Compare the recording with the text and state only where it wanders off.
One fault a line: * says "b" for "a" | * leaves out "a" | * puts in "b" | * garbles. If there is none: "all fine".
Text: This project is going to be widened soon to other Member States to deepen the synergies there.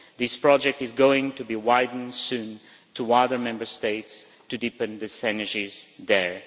all fine